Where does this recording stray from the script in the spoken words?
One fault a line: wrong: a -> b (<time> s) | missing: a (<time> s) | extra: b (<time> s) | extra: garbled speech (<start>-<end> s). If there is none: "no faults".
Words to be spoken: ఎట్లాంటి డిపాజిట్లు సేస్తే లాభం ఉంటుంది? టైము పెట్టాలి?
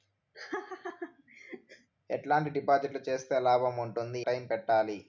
no faults